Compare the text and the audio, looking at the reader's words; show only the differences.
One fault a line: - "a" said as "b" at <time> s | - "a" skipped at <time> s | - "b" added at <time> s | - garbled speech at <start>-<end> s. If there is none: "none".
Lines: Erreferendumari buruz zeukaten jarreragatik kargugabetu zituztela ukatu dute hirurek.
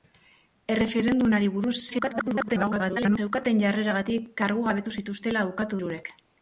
- garbled speech at 1.9-3.2 s
- "dute" skipped at 5.8 s